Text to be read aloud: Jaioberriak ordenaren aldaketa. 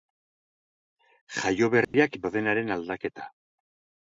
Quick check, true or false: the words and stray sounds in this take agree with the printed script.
false